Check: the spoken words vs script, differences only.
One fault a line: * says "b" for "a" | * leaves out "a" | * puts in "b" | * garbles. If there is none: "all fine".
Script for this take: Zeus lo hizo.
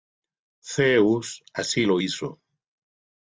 * puts in "así"